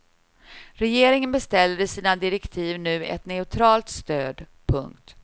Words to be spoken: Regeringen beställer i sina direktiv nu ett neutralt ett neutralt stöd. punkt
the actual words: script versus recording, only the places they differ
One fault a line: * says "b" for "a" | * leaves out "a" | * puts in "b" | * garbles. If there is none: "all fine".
* leaves out "ett neutralt"